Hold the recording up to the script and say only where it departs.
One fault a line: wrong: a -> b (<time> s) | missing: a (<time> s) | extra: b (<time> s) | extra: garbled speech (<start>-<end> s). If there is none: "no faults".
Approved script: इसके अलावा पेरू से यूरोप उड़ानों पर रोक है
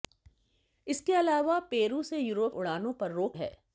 no faults